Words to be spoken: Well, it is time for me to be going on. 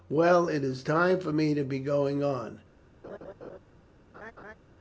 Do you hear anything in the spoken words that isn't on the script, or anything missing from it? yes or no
no